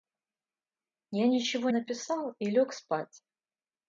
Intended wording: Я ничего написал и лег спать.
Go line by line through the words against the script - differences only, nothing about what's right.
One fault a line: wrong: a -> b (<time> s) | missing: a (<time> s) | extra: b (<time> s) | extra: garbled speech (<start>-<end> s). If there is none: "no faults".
no faults